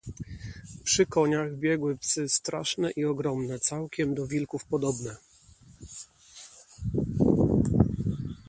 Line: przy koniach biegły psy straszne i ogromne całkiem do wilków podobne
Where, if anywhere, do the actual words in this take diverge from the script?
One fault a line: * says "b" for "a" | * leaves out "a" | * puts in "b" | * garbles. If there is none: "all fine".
all fine